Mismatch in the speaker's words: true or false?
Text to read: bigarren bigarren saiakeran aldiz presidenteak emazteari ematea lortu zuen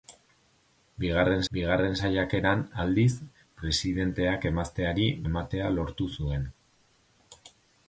false